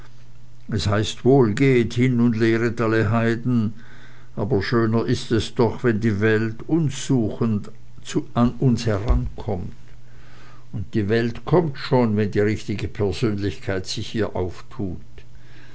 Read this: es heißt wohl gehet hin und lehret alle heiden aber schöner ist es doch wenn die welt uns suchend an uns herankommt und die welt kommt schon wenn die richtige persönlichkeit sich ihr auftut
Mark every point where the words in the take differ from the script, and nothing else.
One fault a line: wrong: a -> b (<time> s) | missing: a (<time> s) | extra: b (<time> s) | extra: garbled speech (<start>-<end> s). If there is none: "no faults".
no faults